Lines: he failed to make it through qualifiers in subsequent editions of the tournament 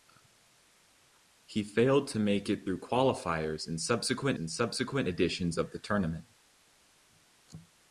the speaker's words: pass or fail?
fail